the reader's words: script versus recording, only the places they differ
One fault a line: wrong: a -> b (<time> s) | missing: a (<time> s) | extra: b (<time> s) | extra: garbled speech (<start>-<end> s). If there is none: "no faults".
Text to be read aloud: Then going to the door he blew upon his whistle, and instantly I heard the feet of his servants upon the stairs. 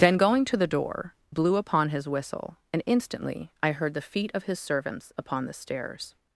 missing: he (1.1 s)